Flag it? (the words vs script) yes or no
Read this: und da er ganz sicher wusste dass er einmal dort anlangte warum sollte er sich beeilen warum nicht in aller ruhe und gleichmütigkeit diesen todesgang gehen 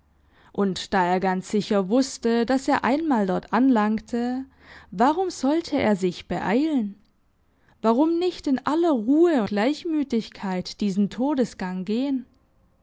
yes